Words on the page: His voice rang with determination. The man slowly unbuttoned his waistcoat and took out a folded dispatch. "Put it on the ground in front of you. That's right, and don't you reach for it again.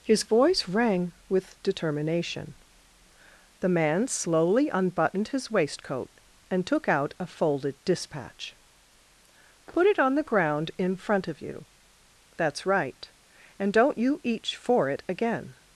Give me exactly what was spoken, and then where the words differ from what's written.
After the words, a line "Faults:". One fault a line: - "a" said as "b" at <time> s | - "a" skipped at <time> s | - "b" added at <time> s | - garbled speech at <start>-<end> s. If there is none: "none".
His voice rang with determination. The man slowly unbuttoned his waistcoat and took out a folded dispatch. "Put it on the ground in front of you. That's right, and don't you each for it again.
Faults:
- "reach" said as "each" at 14.2 s